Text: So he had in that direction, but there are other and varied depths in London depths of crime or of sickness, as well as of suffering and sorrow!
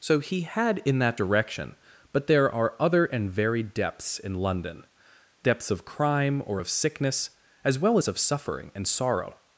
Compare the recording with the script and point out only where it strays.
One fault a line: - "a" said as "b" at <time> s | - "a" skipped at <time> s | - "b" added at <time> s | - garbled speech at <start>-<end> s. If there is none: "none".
none